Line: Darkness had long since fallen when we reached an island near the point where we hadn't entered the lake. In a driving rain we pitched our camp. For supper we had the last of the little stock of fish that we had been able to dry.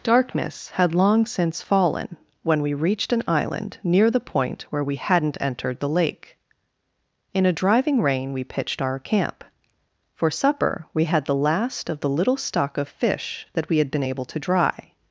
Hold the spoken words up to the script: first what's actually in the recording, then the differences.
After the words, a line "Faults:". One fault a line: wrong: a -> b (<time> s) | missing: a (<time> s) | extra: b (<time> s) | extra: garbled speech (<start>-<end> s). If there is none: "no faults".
Darkness had long since fallen when we reached an island near the point where we hadn't entered the lake. In a driving rain we pitched our camp. For supper we had the last of the little stock of fish that we had been able to dry.
Faults:
no faults